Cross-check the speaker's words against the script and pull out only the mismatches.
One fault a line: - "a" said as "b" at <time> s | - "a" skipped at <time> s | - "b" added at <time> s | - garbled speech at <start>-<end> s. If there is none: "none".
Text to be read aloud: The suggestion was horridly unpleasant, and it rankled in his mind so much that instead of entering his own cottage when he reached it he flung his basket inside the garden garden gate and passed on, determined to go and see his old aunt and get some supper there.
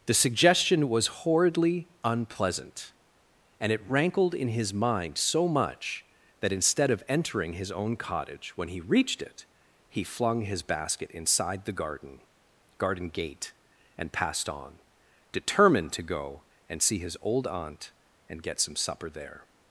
none